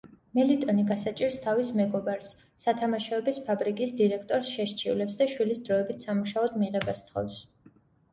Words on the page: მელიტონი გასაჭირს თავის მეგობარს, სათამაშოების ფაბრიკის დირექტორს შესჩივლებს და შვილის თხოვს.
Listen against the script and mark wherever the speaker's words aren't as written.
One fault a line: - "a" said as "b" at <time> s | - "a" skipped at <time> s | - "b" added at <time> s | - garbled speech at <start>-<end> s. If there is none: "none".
- "დროებით სამუშაოდ მიღებას" added at 5.7 s